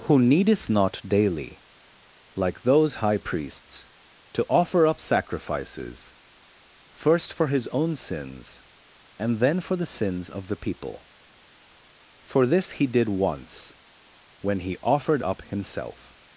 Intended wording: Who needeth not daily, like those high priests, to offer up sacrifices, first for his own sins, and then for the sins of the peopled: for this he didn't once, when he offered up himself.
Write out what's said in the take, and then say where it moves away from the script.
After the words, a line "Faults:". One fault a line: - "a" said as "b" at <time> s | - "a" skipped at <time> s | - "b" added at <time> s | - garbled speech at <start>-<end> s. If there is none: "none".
Who needeth not daily, like those high priests, to offer up sacrifices, first for his own sins, and then for the sins of the people: for this he did once, when he offered up himself.
Faults:
- "peopled" said as "people" at 10.6 s
- "didn't" said as "did" at 12.9 s